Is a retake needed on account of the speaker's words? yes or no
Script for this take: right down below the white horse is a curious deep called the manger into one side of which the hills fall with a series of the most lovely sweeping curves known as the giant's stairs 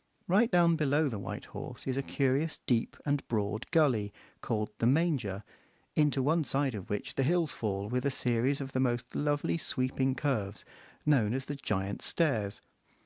yes